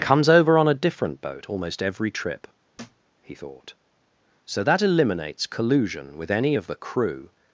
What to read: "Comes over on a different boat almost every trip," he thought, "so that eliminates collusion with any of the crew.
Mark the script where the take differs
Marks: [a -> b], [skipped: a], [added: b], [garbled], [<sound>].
"Comes over on a different boat almost every trip," [thud] he thought, "so that eliminates collusion with any of the crew.